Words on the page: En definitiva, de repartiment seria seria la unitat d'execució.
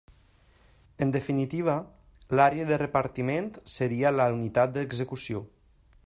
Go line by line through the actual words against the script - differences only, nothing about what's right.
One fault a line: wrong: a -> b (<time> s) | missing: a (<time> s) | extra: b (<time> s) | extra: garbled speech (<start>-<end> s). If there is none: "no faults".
extra: l'àrea (2.4 s)
missing: seria (4.2 s)